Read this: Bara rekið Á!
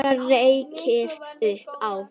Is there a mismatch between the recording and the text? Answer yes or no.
yes